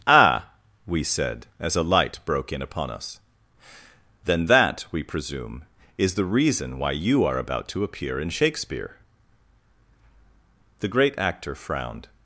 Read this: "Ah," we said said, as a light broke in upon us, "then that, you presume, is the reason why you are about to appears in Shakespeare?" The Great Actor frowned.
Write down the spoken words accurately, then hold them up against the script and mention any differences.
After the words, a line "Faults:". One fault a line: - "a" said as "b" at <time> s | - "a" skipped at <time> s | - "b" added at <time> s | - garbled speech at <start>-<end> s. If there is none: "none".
"Ah," we said, as a light broke in upon us, "then that, we presume, is the reason why you are about to appear in Shakespeare?" The Great Actor frowned.
Faults:
- "said" skipped at 1.5 s
- "you" said as "we" at 4.9 s
- "appears" said as "appear" at 7.8 s